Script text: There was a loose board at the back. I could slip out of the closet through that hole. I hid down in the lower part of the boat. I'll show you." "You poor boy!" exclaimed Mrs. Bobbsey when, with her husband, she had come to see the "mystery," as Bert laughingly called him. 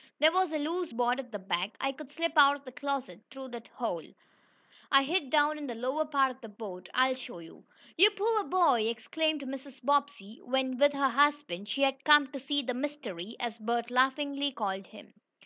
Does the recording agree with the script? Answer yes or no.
yes